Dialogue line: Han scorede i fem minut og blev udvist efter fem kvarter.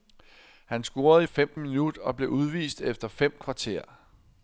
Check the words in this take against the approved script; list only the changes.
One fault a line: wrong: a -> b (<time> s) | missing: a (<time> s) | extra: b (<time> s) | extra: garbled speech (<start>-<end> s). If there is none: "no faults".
no faults